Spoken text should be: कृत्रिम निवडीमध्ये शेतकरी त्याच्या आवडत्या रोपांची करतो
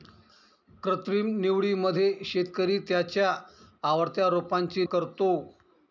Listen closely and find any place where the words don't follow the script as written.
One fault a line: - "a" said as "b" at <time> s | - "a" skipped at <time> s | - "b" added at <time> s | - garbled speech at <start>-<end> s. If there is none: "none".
none